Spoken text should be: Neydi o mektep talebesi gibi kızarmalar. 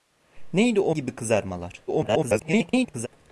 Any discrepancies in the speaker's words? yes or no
yes